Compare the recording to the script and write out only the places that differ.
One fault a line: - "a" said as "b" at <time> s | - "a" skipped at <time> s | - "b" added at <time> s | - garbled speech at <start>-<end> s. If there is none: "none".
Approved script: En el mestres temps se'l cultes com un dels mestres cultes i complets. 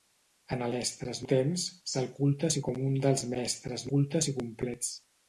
none